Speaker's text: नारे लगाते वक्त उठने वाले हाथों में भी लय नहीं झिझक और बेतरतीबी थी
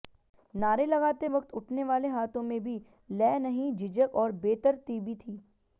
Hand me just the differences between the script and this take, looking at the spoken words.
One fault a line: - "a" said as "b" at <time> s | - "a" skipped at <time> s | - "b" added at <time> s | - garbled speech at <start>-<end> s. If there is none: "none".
none